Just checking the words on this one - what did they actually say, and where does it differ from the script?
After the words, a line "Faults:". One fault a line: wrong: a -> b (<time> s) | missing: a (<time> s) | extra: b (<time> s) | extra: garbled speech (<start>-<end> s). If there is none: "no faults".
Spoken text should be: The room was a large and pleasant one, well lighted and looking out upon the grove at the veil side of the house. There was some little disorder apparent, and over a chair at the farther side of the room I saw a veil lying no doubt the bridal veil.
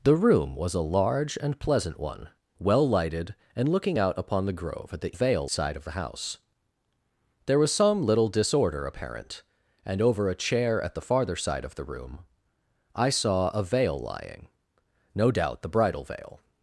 The room was a large and pleasant one, well lighted and looking out upon the grove at the veil side of the house. There was some little disorder apparent, and over a chair at the farther side of the room I saw a veil lying no doubt the bridal veil.
Faults:
no faults